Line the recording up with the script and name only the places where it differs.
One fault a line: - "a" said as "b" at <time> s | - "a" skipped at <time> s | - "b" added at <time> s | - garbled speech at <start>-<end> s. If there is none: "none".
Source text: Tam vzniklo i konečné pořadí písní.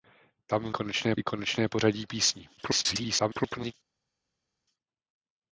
- "vzniklo" said as "konečné" at 0.7 s
- garbled speech at 2.6-3.7 s